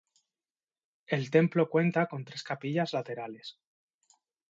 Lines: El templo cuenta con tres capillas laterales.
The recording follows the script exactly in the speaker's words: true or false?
true